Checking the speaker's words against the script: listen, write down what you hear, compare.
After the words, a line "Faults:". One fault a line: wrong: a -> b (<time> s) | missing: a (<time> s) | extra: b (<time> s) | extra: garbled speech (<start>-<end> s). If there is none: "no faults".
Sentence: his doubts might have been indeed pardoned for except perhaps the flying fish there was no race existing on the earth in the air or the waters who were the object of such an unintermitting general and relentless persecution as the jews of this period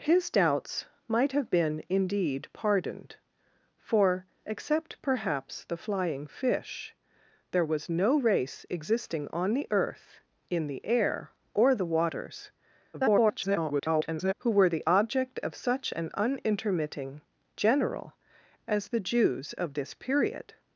his doubts might have been indeed pardoned for except perhaps the flying fish there was no race existing on the earth in the air or the waters [garbled] who were the object of such an unintermitting general as the jews of this period
Faults:
extra: garbled speech (12.9-14.3 s)
missing: and relentless persecution (18.1 s)